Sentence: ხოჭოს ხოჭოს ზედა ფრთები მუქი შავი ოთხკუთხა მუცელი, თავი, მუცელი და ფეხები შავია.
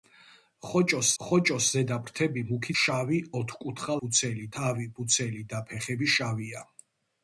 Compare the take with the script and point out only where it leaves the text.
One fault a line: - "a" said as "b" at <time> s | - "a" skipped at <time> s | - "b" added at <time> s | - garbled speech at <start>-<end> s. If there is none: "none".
none